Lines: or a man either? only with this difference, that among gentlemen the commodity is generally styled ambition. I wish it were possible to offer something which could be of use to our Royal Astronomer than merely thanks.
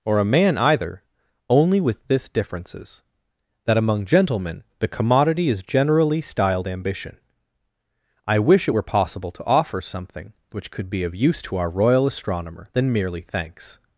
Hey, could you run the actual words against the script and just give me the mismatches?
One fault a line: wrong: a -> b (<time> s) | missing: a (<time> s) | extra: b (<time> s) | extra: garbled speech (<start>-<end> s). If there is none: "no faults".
wrong: difference -> differences (2.3 s)